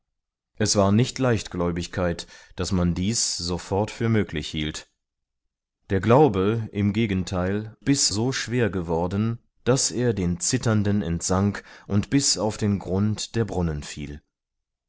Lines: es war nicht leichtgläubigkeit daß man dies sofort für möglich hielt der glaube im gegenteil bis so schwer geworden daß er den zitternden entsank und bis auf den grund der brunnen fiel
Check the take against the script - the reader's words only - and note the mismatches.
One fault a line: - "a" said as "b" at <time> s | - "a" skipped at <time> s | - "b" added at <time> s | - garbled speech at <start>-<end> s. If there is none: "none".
none